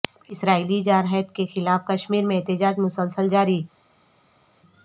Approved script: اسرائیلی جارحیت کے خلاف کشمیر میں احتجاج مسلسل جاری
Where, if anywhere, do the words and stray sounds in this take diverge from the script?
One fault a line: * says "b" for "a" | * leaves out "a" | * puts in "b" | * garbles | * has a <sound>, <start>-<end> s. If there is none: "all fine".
all fine